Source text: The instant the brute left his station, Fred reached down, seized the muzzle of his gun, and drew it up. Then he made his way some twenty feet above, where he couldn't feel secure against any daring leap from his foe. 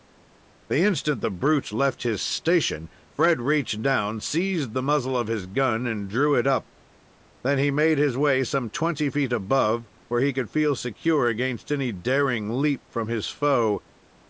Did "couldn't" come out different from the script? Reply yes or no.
yes